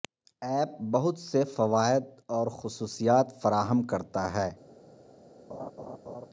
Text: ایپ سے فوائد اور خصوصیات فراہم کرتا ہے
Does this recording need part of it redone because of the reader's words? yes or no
yes